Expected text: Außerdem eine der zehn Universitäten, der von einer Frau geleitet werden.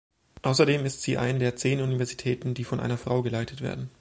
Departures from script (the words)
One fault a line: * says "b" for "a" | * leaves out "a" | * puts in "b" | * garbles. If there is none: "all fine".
* puts in "ist sie"
* says "die" for "der"